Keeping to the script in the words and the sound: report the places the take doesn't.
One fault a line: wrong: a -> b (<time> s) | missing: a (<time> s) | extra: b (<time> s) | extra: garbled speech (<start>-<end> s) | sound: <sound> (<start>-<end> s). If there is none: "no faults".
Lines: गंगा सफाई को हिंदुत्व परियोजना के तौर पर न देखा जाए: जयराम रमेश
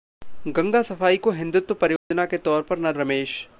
sound: dropout (2.0-2.1 s)
missing: देखा जाए जयराम (2.9 s)